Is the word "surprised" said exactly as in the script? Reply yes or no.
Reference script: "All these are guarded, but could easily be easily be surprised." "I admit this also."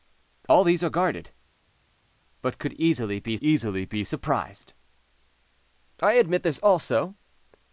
yes